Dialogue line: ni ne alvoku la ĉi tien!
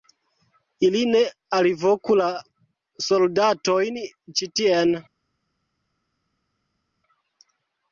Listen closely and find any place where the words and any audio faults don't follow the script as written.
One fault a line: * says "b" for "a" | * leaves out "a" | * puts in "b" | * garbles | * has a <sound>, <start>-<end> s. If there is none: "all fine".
* says "ili" for "ni"
* puts in "soldatojn"